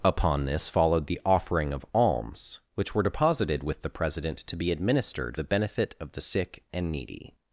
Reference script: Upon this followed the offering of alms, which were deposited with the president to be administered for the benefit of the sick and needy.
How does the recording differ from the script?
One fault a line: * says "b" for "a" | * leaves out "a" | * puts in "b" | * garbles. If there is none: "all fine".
* leaves out "for"